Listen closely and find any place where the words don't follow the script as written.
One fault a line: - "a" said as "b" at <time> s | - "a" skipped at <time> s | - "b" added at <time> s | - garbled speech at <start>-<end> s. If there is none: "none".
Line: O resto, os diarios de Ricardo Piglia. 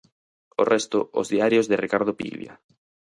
none